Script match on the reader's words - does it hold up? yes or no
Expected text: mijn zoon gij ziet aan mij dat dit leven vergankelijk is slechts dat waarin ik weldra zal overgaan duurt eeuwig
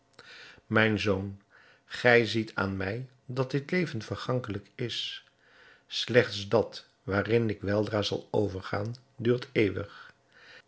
yes